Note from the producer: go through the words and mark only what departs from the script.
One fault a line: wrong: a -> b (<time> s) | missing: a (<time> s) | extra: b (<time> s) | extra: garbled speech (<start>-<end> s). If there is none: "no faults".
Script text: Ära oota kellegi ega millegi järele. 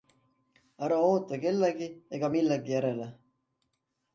no faults